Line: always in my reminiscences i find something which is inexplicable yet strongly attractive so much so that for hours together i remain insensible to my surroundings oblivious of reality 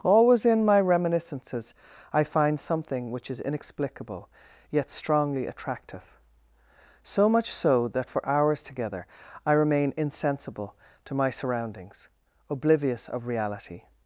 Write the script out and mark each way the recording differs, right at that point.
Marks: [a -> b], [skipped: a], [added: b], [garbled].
always in my reminiscences i find something which is inexplicable yet strongly attractive so much so that for hours together i remain insensible to my surroundings oblivious of reality